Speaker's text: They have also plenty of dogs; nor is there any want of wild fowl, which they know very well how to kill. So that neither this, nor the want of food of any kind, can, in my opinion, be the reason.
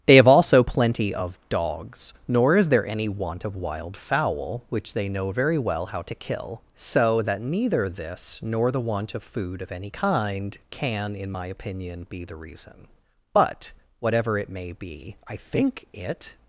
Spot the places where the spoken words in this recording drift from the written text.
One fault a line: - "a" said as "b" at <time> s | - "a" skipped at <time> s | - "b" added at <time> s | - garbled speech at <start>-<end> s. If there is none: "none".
- "But whatever it may be I think it" added at 13.3 s